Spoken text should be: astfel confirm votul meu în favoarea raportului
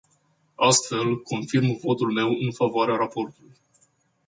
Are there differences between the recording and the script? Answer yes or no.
no